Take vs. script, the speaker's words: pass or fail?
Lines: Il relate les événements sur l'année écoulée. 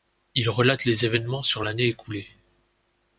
pass